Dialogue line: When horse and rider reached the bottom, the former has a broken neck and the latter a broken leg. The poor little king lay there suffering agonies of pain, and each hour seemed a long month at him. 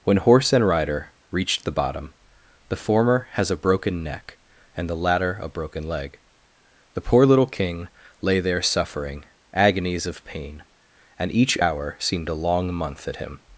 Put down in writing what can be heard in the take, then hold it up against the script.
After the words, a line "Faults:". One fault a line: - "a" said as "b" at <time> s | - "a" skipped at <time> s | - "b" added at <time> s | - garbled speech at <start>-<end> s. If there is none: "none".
When horse and rider reached the bottom, the former has a broken neck and the latter a broken leg. The poor little king lay there suffering agonies of pain, and each hour seemed a long month at him.
Faults:
none